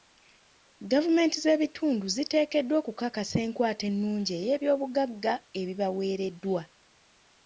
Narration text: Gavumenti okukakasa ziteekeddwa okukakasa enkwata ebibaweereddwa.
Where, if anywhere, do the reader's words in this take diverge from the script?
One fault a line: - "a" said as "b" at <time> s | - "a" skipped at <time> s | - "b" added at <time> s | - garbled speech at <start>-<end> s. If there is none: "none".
- "okukakasa" said as "z'ebitundu" at 1.4 s
- "ennungi ey'ebyobugagga" added at 3.9 s